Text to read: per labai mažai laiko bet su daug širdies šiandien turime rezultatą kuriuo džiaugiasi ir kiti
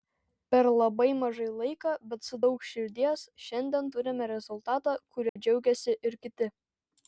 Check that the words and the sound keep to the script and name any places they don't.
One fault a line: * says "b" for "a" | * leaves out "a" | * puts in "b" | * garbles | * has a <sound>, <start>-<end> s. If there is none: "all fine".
* has a dropout, 5.3-5.4 s